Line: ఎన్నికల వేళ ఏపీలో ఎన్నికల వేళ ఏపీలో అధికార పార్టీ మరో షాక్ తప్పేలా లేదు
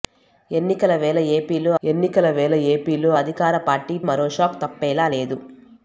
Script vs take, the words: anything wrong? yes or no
no